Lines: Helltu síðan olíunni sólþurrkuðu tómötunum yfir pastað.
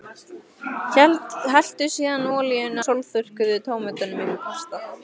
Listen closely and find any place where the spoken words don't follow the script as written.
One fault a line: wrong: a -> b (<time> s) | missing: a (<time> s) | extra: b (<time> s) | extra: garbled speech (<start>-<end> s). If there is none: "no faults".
no faults